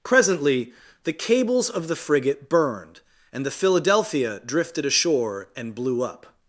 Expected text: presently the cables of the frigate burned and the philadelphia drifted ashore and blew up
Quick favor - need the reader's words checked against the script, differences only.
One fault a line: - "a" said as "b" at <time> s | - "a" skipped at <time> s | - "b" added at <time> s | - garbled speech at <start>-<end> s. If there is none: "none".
none